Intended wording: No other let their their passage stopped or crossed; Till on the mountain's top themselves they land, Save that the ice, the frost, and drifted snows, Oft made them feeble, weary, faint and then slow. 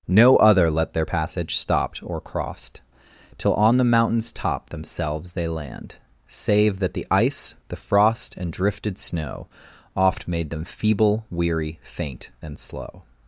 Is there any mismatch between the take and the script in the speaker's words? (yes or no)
yes